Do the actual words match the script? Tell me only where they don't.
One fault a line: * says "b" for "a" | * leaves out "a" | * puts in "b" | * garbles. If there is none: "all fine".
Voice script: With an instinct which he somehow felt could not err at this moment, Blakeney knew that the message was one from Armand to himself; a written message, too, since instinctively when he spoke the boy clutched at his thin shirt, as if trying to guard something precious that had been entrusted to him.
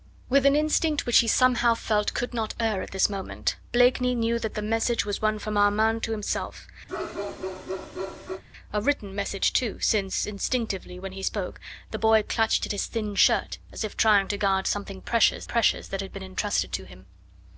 * puts in "precious"